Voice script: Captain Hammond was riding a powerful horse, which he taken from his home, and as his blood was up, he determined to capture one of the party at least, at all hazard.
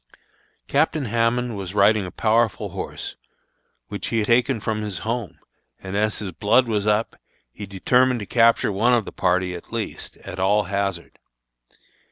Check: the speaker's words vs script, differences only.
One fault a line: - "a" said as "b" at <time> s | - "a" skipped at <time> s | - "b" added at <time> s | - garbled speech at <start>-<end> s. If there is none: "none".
none